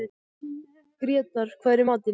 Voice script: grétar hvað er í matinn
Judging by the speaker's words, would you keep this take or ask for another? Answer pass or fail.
pass